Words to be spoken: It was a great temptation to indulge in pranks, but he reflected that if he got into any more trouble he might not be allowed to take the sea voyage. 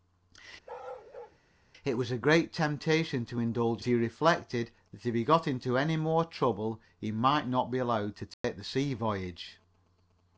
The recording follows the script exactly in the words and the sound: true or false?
false